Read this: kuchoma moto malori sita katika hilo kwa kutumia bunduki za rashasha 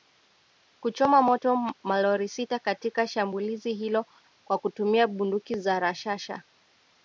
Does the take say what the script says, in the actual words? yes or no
no